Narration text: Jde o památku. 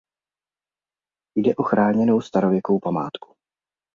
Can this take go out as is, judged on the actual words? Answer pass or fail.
fail